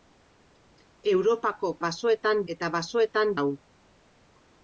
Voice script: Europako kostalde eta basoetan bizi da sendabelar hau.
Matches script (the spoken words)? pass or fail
fail